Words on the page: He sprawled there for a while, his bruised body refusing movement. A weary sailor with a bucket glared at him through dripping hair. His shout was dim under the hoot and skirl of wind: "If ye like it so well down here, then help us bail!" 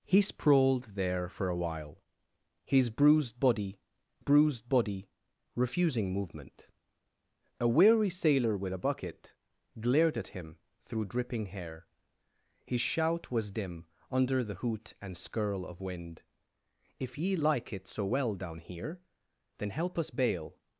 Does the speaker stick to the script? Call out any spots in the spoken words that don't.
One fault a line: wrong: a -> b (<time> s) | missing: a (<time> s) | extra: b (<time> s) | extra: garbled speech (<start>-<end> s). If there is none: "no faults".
extra: bruised body (4.2 s)